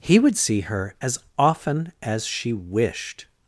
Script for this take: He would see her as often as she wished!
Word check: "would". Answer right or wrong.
right